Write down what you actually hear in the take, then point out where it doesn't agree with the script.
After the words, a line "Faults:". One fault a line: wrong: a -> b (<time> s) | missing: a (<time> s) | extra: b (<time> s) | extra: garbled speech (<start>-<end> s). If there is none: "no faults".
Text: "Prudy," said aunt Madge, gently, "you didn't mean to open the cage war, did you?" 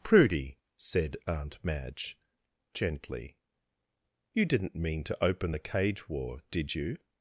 "Prudy," said aunt Madge, gently, "you didn't mean to open the cage war, did you?"
Faults:
no faults